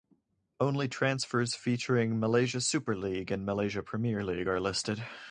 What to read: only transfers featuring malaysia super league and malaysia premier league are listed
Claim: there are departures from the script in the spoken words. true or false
false